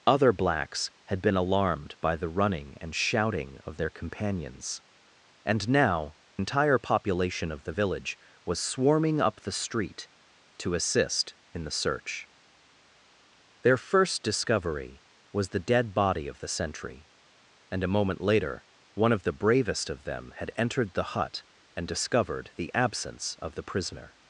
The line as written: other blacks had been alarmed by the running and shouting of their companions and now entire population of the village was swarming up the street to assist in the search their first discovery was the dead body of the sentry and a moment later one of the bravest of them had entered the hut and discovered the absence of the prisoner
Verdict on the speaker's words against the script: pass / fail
pass